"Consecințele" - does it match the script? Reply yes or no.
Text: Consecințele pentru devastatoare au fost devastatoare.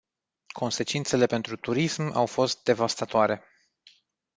yes